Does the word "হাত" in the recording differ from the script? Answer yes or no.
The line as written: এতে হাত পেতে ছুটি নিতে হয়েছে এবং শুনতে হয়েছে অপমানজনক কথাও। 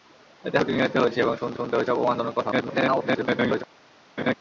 yes